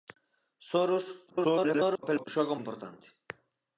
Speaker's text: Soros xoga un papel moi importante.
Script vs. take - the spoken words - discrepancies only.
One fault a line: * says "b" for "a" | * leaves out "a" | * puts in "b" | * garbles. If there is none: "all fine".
* garbles
* leaves out "papel moi"